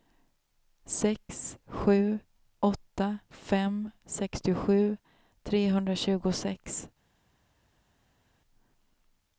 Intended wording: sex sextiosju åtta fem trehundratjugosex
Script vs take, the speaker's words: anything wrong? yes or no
yes